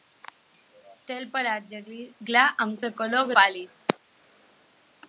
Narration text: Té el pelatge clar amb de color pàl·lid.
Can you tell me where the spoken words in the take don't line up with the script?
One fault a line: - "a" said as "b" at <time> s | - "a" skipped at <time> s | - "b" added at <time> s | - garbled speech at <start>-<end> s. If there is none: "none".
none